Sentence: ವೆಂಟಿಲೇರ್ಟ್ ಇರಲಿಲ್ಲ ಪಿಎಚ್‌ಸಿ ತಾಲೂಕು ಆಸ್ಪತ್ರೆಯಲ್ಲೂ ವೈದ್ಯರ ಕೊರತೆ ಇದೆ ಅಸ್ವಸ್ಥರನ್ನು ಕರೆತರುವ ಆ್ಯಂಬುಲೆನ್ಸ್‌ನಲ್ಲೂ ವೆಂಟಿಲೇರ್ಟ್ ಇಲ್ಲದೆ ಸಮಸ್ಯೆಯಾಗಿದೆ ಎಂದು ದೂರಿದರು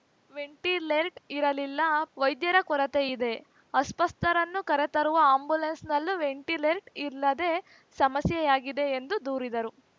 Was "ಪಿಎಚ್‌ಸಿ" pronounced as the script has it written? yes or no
no